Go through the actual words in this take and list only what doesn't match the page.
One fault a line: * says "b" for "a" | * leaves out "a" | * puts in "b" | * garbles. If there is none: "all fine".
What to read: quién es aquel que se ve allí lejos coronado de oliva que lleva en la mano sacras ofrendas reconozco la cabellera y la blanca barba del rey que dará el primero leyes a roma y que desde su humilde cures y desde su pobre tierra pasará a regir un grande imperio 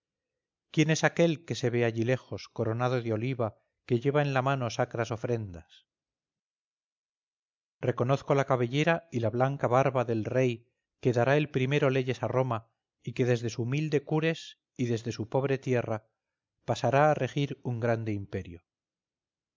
all fine